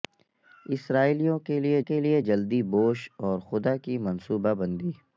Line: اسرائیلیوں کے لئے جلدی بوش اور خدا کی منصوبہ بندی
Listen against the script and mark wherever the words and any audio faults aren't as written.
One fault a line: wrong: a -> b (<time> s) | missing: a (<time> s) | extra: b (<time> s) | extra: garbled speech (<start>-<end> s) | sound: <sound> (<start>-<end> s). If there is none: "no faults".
extra: کے لئے (1.8 s)